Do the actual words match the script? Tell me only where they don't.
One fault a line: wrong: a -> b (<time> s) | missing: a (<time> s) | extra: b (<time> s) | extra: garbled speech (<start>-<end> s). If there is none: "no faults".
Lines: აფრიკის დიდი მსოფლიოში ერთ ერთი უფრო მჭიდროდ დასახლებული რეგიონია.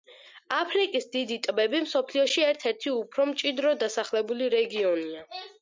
extra: ტბები (1.5 s)